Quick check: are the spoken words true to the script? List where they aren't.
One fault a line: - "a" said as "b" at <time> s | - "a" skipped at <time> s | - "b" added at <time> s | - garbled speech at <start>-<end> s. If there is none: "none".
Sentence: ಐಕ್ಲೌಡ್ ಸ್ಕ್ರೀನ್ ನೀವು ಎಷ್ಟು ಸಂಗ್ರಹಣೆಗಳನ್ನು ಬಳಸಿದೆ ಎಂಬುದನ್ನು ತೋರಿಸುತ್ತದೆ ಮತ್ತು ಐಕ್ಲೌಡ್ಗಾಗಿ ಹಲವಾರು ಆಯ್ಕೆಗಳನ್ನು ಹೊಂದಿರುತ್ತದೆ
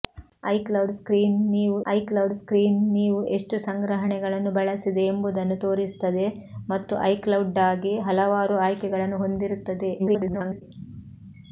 - "ಐಕ್ಲೌಡ್ ಸ್ಕ್ರೀನ್ ನೀವು" added at 1.9 s
- garbled speech at 10.0-10.6 s